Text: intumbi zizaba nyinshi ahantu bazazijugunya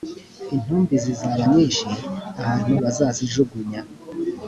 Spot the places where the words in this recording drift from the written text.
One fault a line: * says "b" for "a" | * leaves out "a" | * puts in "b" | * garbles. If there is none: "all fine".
all fine